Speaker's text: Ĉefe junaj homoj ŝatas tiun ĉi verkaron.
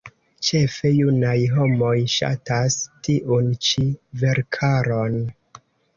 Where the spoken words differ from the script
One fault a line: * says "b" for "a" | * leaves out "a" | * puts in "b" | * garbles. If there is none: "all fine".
all fine